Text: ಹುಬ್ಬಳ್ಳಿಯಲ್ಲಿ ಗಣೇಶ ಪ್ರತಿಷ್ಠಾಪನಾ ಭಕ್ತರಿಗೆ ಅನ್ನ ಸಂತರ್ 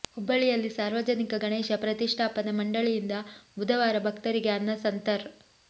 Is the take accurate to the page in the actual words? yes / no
no